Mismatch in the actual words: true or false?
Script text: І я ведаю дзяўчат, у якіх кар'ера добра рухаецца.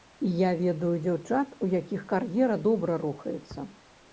false